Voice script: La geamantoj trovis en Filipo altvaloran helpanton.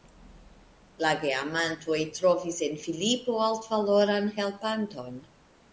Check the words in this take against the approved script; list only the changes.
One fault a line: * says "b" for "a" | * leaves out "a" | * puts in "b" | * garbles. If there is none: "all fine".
all fine